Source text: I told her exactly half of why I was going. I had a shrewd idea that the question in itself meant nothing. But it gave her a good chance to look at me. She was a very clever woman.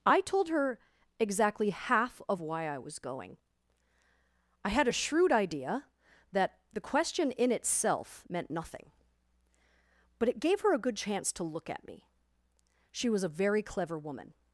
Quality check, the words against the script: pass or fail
pass